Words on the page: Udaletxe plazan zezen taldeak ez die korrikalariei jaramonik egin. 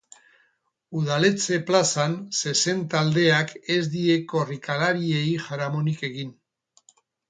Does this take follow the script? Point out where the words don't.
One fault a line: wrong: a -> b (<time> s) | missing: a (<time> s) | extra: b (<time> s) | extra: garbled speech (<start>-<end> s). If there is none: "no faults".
no faults